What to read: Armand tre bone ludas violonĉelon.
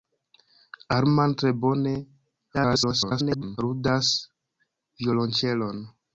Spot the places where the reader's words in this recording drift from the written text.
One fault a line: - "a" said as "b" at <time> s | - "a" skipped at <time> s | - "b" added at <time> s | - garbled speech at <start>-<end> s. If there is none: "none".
- garbled speech at 2.5-3.6 s